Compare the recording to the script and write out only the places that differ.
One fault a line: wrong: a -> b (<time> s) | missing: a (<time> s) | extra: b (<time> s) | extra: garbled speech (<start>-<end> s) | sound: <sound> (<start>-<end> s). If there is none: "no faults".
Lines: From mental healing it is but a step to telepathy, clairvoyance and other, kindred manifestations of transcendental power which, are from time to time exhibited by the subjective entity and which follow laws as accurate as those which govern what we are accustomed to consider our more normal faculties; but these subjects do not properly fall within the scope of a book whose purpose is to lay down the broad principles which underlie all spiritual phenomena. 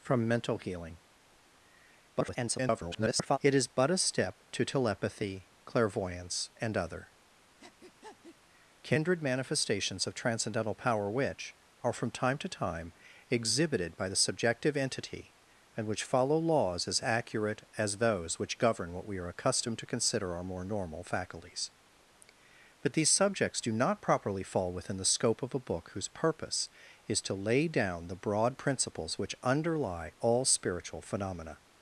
extra: garbled speech (2.1-3.4 s)
sound: breath (7.6-8.4 s)